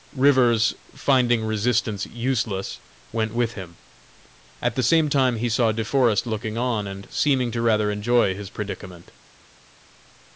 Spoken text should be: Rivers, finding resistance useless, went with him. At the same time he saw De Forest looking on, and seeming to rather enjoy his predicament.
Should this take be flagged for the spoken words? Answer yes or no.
no